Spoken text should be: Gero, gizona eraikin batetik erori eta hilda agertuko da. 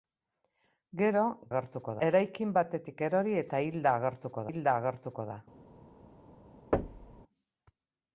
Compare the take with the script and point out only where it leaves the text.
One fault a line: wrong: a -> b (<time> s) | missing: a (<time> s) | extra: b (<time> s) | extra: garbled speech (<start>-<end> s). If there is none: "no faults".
wrong: gizona -> agertuko (1.5 s)
extra: hilda agertuko (4.5 s)